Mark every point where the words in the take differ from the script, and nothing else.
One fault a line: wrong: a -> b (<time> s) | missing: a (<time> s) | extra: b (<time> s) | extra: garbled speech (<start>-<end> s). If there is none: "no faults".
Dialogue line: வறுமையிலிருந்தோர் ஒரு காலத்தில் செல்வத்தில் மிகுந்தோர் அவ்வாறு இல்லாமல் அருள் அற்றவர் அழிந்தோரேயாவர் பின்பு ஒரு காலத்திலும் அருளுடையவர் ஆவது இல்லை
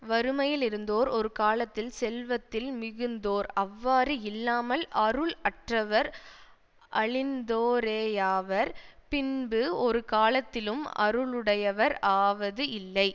no faults